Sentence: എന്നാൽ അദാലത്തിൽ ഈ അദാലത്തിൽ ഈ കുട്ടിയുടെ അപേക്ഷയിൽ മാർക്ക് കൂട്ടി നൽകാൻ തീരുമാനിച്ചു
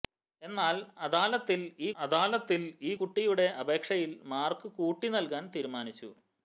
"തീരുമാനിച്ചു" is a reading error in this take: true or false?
false